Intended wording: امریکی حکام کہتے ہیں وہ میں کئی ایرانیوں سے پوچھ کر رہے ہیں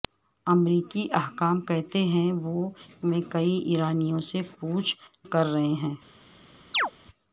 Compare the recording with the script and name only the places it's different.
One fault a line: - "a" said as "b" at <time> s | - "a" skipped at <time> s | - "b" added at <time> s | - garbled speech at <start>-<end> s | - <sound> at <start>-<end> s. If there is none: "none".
- chirp at 6.7-6.9 s